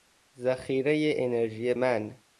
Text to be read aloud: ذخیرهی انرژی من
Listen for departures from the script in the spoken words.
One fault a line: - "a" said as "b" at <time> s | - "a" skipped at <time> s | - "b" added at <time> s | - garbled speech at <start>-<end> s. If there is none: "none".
none